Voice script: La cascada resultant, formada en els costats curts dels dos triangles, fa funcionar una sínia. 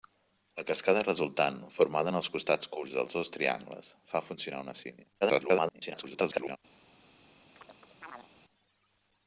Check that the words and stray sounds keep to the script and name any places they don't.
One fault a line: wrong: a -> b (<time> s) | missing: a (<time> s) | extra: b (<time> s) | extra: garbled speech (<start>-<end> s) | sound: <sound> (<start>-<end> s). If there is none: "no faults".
extra: garbled speech (5.2-6.6 s)
sound: chirp (7.6-8.3 s)